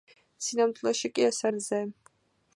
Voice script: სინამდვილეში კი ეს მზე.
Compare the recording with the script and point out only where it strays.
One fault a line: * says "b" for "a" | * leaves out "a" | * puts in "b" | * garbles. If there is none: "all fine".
all fine